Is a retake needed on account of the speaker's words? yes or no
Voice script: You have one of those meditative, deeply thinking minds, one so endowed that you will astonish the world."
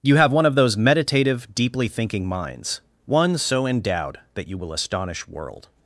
yes